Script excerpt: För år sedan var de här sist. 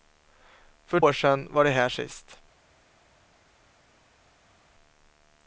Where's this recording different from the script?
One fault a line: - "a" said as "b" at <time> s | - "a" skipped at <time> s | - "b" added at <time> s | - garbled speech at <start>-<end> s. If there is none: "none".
none